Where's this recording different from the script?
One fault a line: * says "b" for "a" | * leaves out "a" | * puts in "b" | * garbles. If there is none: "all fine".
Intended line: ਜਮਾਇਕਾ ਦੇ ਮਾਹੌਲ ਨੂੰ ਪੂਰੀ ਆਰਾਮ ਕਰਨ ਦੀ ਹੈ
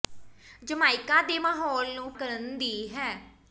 * leaves out "ਪੂਰੀ ਆਰਾਮ"